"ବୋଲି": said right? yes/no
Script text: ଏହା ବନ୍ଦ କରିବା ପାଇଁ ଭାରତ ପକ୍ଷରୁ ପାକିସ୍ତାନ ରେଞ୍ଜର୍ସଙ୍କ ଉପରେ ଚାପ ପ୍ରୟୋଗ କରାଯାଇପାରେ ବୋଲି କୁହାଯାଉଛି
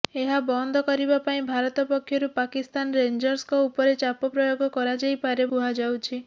no